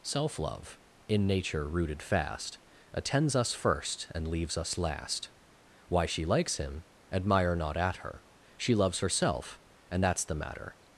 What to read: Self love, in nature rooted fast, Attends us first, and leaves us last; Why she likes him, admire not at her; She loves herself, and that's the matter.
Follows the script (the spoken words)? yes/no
yes